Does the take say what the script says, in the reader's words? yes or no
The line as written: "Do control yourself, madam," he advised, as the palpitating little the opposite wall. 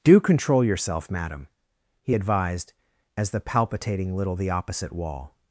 yes